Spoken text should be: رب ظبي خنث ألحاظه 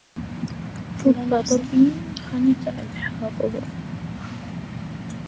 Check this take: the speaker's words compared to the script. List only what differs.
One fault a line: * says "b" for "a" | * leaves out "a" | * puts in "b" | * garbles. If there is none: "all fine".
all fine